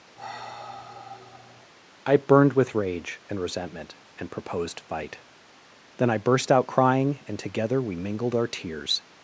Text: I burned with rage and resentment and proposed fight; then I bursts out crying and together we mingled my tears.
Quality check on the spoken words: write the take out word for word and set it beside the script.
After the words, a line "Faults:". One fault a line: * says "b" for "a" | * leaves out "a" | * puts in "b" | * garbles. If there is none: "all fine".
I burned with rage and resentment and proposed fight; then I burst out crying and together we mingled our tears.
Faults:
* says "burst" for "bursts"
* says "our" for "my"